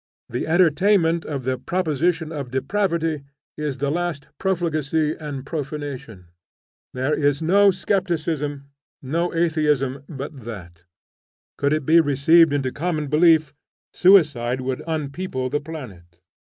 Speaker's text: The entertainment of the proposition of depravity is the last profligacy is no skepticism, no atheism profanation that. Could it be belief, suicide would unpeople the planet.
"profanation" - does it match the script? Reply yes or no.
no